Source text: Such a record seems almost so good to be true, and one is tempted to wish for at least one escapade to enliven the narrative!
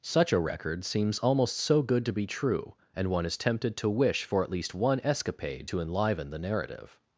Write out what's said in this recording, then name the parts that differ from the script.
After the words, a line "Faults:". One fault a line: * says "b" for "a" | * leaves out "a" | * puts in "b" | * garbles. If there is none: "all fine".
Such a record seems almost so good to be true, and one is tempted to wish for at least one escapade to enliven the narrative!
Faults:
all fine